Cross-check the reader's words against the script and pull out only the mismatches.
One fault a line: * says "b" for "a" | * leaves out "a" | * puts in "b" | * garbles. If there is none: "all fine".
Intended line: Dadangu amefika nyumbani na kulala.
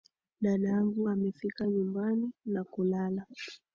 all fine